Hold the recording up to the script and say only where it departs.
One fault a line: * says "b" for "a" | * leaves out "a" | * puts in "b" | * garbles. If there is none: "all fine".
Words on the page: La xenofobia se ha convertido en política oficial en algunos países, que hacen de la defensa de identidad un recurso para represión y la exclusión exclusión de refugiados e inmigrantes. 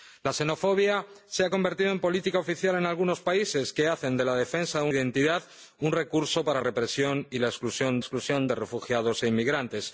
all fine